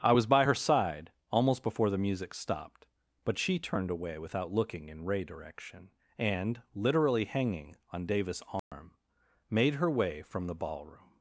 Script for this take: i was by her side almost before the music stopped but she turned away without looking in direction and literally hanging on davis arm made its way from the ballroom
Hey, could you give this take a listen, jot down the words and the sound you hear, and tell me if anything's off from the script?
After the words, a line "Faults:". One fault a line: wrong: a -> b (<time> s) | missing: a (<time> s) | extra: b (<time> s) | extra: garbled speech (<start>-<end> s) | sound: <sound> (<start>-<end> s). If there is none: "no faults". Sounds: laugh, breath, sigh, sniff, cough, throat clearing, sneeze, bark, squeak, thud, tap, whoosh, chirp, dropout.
i was by her side almost before the music stopped but she turned away without looking in ray direction and literally hanging on davis arm made her way from the ballroom
Faults:
extra: ray (5.0 s)
sound: dropout (8.6-8.7 s)
wrong: its -> her (9.7 s)